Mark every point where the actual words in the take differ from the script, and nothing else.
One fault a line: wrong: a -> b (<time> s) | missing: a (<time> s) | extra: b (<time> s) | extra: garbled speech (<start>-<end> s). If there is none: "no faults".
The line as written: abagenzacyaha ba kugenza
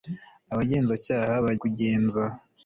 no faults